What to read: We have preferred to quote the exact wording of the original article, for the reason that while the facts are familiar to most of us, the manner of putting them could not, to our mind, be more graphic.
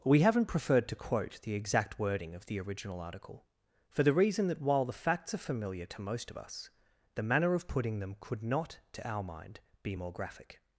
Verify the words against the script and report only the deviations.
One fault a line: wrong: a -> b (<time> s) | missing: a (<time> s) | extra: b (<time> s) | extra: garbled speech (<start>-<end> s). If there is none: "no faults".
wrong: have -> haven't (0.2 s)